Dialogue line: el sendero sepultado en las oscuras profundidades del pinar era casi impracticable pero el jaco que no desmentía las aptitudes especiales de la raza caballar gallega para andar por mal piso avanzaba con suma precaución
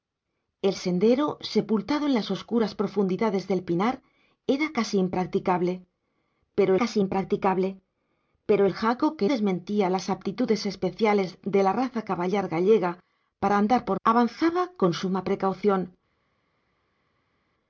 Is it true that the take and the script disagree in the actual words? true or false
true